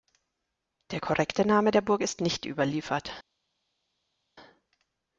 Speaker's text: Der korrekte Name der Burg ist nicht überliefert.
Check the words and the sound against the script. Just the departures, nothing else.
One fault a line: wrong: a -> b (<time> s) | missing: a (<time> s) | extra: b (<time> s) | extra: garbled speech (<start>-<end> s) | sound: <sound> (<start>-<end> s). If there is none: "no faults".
no faults